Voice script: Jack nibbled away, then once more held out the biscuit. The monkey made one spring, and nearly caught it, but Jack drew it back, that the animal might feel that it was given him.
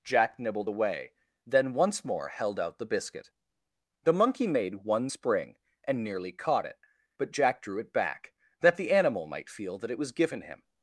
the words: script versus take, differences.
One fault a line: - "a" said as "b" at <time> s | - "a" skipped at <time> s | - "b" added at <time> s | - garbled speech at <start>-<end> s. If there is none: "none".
none